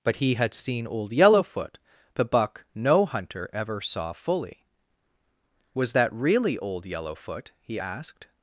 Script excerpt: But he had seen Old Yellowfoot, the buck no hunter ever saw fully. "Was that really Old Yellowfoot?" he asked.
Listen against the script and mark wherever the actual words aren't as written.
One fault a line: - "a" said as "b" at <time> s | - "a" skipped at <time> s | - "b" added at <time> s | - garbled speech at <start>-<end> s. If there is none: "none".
none